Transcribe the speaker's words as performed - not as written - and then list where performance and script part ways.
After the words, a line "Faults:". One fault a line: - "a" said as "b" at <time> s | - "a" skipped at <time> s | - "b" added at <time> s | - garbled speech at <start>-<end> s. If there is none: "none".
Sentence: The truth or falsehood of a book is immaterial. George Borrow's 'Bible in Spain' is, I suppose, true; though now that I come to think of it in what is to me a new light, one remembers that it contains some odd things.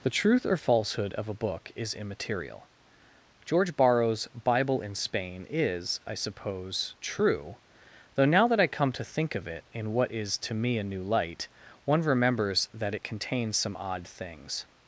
The truth or falsehood of a book is immaterial. George Borrow's 'Bible in Spain' is, I suppose, true; though now that I come to think of it in what is to me a new light, one remembers that it contains some odd things.
Faults:
none